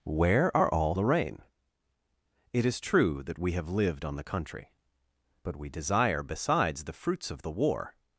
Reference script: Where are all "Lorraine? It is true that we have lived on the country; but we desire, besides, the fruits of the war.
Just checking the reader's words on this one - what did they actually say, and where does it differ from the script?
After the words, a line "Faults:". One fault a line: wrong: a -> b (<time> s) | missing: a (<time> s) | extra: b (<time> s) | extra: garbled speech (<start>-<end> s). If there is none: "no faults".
Where are all "Lorraine? It is true that we have lived on the country; but we desire, besides, the fruits of the war.
Faults:
no faults